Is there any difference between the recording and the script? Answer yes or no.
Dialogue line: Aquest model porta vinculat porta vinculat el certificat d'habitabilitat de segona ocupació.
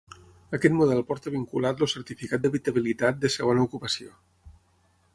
yes